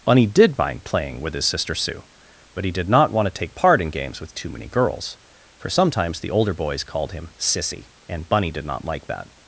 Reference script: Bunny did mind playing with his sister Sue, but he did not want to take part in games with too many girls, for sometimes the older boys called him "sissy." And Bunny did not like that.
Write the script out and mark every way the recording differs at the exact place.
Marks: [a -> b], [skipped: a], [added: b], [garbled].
Bunny did mind playing with his sister Sue, but he did not want to take part in games with too many girls, for sometimes the older boys called him "sissy." And Bunny did not like that.